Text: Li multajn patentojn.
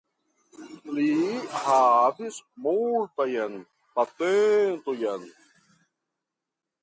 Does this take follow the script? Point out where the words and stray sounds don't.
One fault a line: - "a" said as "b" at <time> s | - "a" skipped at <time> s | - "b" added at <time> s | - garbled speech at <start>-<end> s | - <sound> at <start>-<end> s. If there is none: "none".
- "havis" added at 1.6 s